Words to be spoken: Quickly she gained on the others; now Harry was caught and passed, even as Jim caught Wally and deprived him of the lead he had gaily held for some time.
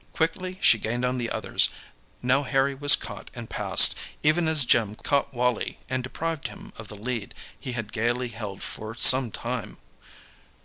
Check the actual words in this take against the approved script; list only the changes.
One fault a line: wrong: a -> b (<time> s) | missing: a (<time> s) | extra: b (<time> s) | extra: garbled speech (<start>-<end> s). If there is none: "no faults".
no faults